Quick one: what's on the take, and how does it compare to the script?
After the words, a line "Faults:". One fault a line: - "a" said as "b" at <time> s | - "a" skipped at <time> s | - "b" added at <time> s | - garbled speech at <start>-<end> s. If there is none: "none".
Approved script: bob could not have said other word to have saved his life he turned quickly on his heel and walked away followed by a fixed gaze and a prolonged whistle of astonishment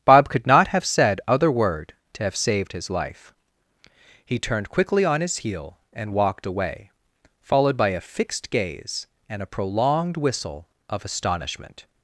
bob could not have said other word to have saved his life he turned quickly on his heel and walked away followed by a fixed gaze and a prolonged whistle of astonishment
Faults:
none